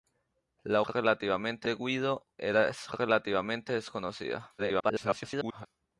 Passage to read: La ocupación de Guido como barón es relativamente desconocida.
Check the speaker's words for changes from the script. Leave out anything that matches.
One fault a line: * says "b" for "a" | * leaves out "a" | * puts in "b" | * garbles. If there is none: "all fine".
* says "relativamente" for "ocupación"
* leaves out "como barón"
* garbles